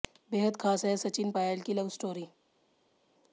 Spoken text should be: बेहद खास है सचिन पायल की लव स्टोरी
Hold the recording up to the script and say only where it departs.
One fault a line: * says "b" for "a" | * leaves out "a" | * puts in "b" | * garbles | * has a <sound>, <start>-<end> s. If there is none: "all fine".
all fine